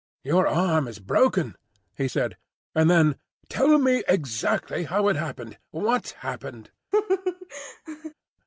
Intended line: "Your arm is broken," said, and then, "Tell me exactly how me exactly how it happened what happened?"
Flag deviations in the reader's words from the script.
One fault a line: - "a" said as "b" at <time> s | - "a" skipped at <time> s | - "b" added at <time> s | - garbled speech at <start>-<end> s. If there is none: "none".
- "he" added at 1.9 s
- "me exactly how" skipped at 5.1 s